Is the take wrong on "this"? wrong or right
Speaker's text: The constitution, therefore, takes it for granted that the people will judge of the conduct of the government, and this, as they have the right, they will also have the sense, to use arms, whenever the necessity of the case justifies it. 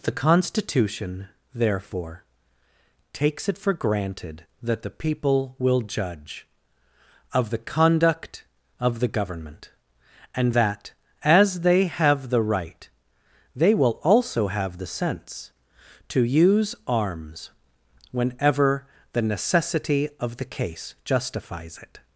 wrong